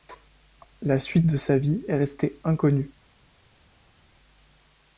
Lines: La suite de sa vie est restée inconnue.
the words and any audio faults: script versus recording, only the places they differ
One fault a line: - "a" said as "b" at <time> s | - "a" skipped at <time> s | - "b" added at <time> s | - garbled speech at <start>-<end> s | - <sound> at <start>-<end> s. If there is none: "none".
none